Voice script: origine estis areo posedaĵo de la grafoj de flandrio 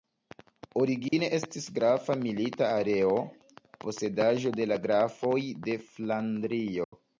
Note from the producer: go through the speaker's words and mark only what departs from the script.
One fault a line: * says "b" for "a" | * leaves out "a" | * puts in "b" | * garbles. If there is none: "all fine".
* puts in "grafa milita"